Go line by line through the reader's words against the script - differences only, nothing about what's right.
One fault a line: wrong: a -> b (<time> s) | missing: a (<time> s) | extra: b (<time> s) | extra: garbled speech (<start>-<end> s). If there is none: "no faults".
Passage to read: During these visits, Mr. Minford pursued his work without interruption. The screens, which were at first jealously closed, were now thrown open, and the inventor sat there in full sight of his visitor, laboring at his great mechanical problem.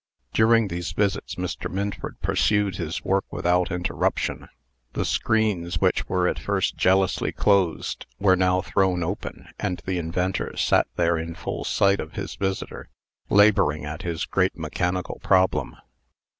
no faults